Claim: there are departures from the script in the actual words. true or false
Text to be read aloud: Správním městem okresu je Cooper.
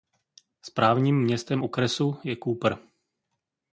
false